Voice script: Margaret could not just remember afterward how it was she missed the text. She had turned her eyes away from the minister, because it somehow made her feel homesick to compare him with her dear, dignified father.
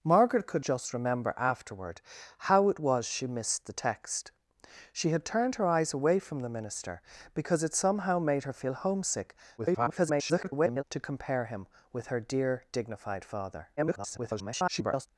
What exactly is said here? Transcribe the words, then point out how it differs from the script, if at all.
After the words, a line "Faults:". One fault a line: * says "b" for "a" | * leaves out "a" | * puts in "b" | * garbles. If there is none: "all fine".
Margaret could just remember afterward how it was she missed the text. She had turned her eyes away from the minister, because it somehow made her feel homesick [garbled] to compare him with her dear, dignified father. [garbled]
Faults:
* leaves out "not"
* garbles
* garbles